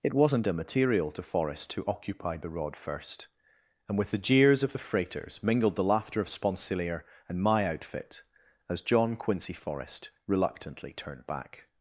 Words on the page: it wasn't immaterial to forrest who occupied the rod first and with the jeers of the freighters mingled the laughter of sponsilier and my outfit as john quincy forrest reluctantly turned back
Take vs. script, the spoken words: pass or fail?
pass